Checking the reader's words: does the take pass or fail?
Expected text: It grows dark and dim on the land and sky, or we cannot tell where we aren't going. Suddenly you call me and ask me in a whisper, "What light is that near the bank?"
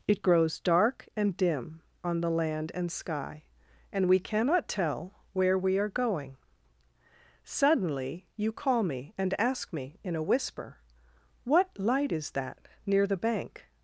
fail